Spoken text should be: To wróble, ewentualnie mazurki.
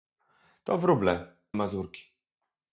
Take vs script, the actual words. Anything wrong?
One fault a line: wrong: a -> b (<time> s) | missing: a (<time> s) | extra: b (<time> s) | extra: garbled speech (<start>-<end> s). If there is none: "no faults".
missing: ewentualnie (1.4 s)